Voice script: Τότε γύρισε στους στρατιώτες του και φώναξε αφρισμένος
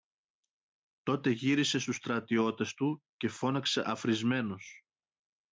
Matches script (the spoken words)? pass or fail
pass